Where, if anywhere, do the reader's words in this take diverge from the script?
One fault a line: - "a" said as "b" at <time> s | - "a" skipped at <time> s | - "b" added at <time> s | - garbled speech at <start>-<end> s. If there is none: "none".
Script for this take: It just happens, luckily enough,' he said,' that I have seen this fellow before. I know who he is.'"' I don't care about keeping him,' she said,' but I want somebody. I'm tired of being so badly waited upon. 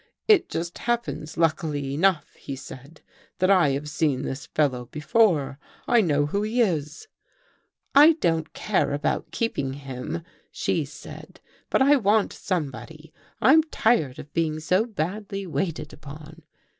none